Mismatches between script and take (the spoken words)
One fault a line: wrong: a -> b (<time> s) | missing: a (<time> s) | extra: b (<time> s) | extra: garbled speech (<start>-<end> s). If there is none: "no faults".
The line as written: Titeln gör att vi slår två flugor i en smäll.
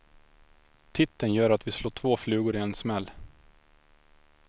no faults